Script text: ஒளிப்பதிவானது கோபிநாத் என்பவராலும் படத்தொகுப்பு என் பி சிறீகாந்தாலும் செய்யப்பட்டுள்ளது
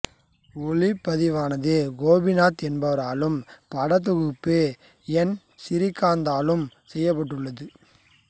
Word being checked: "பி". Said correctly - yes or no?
no